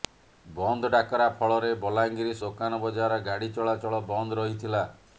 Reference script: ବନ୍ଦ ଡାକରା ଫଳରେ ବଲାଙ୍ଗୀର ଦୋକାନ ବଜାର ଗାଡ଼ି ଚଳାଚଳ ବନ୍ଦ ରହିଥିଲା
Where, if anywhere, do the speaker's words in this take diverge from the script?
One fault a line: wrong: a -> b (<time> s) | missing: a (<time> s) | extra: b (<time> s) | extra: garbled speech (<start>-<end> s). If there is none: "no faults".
no faults